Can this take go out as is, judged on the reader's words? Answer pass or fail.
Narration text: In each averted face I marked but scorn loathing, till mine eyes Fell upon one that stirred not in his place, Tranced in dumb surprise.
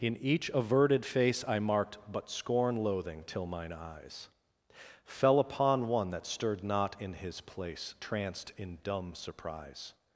pass